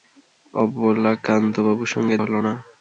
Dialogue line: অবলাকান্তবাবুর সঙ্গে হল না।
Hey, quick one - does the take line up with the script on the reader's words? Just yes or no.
yes